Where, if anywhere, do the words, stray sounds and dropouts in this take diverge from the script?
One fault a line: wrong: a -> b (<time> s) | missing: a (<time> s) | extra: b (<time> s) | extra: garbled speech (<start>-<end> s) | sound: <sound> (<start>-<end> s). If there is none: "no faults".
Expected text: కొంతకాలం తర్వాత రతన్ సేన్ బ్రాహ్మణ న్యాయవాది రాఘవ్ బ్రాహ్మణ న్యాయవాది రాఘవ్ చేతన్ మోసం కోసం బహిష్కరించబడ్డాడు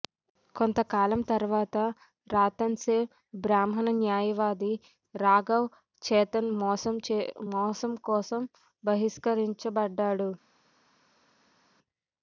missing: బ్రాహ్మణ న్యాయవాది రాఘవ్ (5.7 s)